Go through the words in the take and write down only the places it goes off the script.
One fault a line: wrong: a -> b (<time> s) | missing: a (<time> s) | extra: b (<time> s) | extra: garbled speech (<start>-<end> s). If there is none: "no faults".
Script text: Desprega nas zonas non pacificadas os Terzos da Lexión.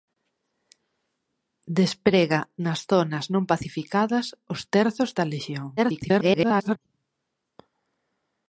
extra: garbled speech (5.8-6.8 s)